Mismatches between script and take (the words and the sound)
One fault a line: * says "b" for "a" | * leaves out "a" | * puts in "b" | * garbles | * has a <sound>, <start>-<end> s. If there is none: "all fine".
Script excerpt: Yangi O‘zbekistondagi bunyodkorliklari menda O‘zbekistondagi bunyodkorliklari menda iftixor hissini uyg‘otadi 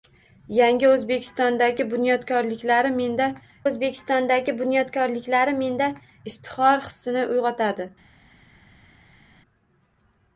all fine